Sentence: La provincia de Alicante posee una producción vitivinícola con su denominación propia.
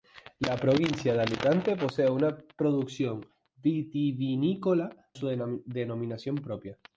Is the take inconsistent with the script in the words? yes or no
yes